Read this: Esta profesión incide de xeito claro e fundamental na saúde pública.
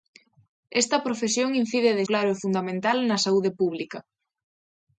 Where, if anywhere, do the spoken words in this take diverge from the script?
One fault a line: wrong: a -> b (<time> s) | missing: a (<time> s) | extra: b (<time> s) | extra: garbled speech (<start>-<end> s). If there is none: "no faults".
missing: xeito (2.0 s)